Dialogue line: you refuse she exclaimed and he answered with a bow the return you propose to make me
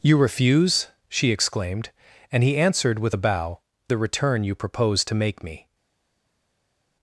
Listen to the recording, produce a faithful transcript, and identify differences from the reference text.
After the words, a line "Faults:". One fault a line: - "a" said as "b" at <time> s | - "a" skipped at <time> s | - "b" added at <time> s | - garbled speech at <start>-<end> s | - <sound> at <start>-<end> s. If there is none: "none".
you refuse she exclaimed and he answered with a bow the return you propose to make me
Faults:
none